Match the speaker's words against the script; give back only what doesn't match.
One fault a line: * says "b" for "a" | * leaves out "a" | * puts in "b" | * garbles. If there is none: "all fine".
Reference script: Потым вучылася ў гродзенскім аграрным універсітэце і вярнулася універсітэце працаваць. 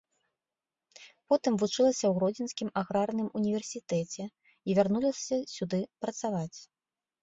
* says "сюды" for "універсітэце"